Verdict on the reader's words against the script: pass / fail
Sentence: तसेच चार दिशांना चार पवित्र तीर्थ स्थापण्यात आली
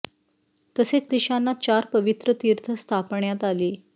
fail